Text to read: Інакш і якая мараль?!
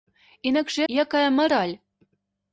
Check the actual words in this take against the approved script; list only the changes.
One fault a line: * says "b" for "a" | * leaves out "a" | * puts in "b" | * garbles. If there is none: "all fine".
all fine